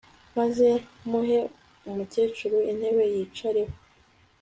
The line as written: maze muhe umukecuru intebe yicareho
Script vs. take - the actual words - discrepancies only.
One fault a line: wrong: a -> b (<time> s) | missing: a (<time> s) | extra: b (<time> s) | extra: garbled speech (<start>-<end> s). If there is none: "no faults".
no faults